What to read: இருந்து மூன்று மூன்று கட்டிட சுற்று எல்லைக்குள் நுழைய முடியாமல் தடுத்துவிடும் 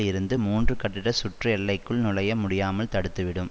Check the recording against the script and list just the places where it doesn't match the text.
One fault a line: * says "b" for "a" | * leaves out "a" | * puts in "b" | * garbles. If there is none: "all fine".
* leaves out "மூன்று"